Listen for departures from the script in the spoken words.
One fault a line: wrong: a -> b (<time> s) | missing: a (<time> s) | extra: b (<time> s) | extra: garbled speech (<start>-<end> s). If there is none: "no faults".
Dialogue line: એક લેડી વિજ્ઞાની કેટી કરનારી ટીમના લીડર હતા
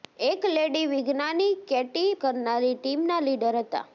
no faults